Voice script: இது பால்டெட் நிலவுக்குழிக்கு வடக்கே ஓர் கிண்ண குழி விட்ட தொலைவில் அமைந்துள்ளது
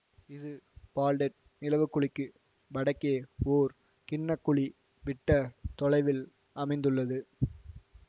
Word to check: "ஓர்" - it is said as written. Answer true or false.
true